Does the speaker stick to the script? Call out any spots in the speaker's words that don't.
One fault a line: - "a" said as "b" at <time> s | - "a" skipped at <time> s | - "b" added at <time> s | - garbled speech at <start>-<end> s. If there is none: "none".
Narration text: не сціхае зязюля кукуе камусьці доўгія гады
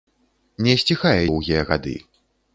- "зязюля кукуе камусьці" skipped at 1.2 s